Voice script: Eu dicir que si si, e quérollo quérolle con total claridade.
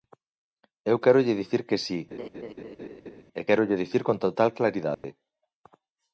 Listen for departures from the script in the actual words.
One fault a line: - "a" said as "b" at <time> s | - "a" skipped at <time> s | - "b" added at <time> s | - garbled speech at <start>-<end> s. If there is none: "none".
- "quérolle" added at 1.0 s
- "si" skipped at 2.0 s
- "quérolle" said as "dicir" at 3.8 s